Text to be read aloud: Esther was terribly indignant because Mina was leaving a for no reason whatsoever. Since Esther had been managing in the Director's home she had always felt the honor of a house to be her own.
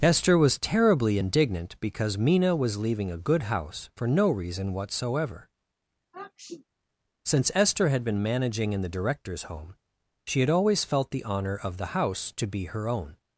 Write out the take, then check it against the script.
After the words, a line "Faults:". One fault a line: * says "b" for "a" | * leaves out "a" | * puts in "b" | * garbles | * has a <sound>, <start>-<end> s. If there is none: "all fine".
Esther was terribly indignant because Mina was leaving a good house for no reason whatsoever. Since Esther had been managing in the Director's home she had always felt the honor of the house to be her own.
Faults:
* puts in "good house"
* has a sniff, 6.1-6.6 s
* says "the" for "a"